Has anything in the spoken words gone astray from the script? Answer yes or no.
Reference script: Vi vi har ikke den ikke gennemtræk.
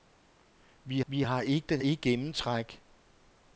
no